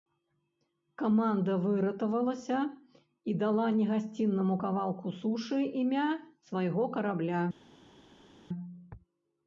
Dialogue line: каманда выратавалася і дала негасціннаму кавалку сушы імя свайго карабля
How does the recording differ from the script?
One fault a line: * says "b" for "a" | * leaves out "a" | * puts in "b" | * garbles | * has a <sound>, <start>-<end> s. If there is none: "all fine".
all fine